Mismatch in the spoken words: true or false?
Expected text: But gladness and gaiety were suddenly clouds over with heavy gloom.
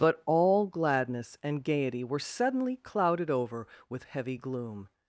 true